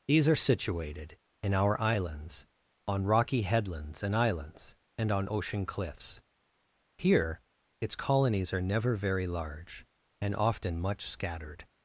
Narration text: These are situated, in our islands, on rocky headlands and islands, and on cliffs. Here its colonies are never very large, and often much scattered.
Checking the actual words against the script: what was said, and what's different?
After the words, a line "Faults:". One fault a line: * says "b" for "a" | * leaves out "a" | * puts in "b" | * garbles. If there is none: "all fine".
These are situated, in our islands, on rocky headlands and islands, and on ocean cliffs. Here its colonies are never very large, and often much scattered.
Faults:
* puts in "ocean"